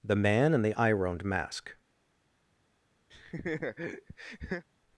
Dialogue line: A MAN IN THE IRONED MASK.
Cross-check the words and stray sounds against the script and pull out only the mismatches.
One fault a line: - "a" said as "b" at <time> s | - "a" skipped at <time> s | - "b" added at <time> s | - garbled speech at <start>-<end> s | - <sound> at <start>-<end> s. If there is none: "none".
- "A" said as "THE" at 0.0 s
- laugh at 3.1-4.6 s